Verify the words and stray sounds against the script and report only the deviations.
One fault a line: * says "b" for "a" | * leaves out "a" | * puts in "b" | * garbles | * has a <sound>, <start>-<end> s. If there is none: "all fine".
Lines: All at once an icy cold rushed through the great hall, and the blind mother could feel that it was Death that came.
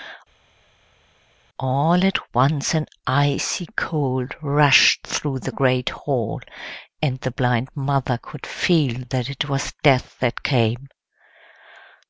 all fine